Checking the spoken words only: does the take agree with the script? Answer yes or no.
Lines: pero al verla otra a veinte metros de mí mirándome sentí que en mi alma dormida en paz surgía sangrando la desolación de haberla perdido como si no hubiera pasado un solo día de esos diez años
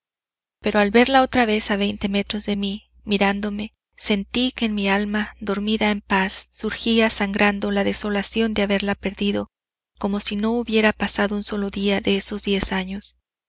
no